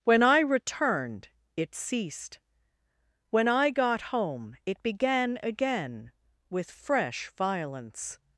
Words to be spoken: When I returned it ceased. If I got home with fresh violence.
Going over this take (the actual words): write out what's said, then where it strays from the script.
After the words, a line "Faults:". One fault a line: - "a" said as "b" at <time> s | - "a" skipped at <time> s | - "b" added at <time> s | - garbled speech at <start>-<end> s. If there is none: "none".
When I returned it ceased. When I got home it began again with fresh violence.
Faults:
- "If" said as "When" at 3.3 s
- "it began again" added at 4.6 s